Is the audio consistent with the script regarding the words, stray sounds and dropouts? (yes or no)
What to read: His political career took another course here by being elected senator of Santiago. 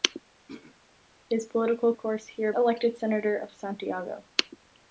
no